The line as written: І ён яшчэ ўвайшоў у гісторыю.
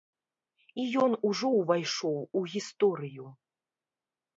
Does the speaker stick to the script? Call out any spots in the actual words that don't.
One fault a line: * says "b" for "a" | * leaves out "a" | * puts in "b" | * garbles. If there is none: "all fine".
* says "ужо" for "яшчэ"